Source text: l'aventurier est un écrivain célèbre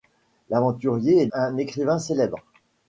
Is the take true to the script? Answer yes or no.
yes